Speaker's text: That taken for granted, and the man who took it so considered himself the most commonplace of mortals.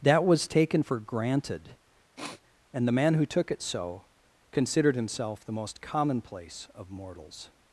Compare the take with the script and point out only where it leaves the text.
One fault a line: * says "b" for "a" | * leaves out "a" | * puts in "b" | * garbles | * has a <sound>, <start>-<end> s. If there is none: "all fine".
* puts in "was"
* has a sniff, 2.2-2.4 s